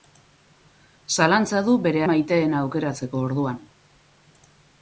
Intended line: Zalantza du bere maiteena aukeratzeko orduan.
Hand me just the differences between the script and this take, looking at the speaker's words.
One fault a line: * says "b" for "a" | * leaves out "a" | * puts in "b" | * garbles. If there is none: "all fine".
all fine